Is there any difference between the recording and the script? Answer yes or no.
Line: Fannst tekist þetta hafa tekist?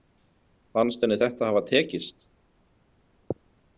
yes